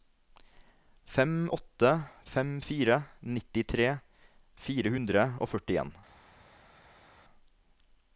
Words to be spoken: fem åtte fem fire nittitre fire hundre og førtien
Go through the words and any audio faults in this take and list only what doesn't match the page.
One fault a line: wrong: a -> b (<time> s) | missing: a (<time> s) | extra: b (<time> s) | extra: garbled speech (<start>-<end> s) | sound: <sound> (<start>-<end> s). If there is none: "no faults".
no faults